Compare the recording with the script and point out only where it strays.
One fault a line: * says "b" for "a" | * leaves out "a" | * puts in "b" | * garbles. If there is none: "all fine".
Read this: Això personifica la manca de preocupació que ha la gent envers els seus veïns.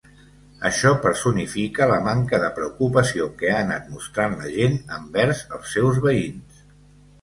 * puts in "anat mostrant"